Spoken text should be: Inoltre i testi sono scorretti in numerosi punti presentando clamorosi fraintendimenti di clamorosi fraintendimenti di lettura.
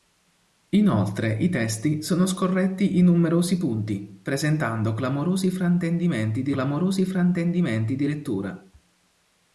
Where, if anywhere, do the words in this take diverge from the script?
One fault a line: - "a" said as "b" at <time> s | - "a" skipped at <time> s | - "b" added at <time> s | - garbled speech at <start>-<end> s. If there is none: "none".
none